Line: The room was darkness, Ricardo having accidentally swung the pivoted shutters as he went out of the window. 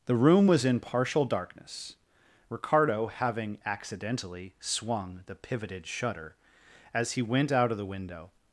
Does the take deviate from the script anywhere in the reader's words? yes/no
yes